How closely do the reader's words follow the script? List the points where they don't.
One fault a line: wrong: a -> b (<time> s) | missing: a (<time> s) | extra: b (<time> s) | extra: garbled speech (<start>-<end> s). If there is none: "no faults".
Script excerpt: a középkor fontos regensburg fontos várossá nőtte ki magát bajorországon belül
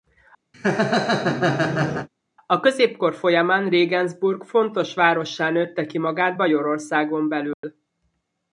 wrong: fontos -> folyamán (3.1 s)